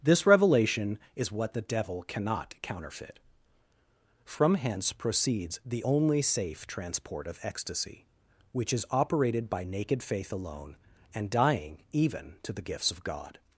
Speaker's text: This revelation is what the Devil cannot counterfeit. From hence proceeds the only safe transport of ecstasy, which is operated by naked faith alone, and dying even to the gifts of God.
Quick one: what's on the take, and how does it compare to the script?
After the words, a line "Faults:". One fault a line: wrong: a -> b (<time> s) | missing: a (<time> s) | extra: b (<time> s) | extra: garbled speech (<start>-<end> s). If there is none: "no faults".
This revelation is what the Devil cannot counterfeit. From hence proceeds the only safe transport of ecstasy, which is operated by naked faith alone, and dying even to the gifts of God.
Faults:
no faults